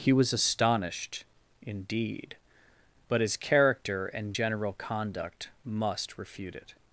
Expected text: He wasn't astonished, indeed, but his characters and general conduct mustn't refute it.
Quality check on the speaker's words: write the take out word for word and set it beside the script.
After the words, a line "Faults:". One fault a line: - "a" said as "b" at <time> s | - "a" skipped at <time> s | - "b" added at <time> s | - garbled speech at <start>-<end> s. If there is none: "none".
He was astonished, indeed, but his character and general conduct must refute it.
Faults:
- "wasn't" said as "was" at 0.1 s
- "characters" said as "character" at 3.4 s
- "mustn't" said as "must" at 5.6 s